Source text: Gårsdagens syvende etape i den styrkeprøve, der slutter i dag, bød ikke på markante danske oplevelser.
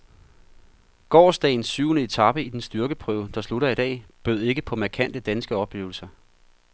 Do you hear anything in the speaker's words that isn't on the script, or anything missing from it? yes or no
no